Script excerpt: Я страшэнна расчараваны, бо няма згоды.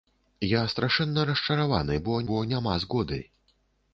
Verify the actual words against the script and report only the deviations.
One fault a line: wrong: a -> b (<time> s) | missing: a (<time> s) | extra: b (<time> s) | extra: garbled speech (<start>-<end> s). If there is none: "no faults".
extra: бо (2.3 s)